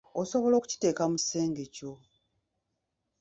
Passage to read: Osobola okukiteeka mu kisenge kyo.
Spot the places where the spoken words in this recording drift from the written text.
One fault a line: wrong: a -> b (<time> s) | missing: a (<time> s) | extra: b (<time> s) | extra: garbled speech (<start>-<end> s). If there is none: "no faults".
no faults